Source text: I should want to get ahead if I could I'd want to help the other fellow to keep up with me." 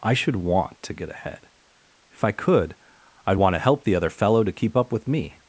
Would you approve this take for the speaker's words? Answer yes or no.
yes